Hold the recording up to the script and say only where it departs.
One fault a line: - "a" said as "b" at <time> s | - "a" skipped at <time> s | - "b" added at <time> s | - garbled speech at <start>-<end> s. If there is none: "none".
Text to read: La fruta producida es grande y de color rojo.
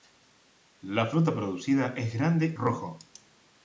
- "y de color" skipped at 2.5 s